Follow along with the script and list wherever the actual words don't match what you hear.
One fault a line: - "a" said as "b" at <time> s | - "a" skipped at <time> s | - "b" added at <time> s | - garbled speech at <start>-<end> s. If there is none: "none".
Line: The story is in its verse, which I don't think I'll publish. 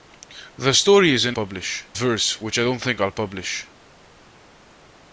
- "its" said as "publish" at 1.3 s